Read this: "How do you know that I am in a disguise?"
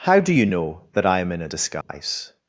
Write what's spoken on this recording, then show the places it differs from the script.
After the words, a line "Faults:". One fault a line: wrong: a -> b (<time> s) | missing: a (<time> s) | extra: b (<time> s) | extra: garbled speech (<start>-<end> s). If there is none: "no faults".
"How do you know that I am in a disguise?"
Faults:
no faults